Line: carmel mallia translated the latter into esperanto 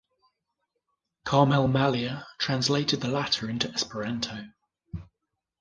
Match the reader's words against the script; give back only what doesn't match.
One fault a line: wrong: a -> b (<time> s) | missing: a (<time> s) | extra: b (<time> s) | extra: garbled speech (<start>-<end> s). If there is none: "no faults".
no faults